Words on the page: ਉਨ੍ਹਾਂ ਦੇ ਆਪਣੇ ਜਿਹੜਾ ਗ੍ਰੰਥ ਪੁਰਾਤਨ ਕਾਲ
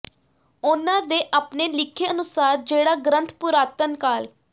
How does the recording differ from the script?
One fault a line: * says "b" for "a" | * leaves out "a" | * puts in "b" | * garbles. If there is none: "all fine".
* puts in "ਲਿਖੇ ਅਨੁਸਾਰ"